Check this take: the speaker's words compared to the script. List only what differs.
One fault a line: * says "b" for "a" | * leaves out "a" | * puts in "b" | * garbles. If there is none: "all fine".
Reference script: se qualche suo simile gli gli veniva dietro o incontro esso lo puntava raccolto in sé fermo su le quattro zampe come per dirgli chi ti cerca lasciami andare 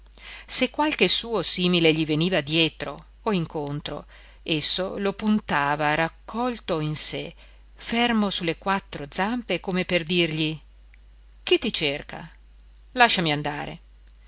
* leaves out "gli"